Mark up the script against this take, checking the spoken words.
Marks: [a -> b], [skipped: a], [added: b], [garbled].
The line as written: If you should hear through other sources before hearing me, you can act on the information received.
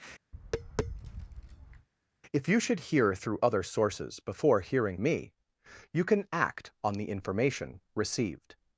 If you should hear through other sources before hearing me, you can act on the information received.